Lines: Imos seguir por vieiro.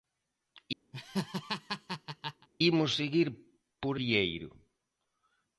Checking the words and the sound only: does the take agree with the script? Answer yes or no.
no